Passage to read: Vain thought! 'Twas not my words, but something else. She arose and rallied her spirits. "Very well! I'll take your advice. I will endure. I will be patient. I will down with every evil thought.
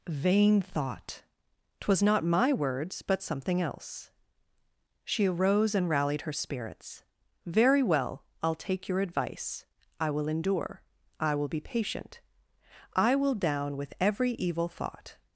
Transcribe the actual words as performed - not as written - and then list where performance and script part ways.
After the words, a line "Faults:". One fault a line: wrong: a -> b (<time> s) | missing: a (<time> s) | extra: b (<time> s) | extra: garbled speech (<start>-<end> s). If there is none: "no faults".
Vain thought! 'Twas not my words, but something else. She arose and rallied her spirits. "Very well! I'll take your advice. I will endure. I will be patient. I will down with every evil thought.
Faults:
no faults